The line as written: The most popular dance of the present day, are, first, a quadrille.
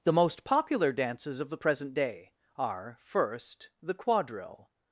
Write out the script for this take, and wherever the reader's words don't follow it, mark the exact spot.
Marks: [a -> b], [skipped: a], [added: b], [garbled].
The most popular [dance -> dances] of the present day, are, first, [a -> the] quadrille.